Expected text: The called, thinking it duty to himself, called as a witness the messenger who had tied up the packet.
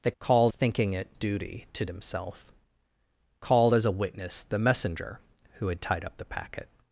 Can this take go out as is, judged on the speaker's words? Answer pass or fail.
pass